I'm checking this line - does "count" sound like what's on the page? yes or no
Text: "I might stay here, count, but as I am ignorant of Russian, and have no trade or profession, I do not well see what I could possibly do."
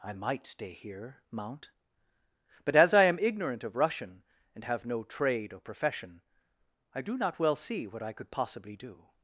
no